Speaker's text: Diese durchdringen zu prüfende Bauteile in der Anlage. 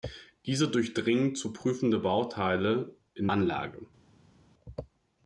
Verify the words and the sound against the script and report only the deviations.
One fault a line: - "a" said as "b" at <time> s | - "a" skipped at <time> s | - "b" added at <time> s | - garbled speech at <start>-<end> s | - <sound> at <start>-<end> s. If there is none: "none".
- "der" skipped at 3.3 s